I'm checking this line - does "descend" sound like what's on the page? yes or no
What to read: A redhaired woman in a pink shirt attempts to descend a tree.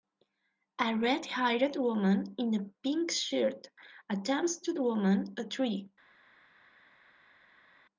no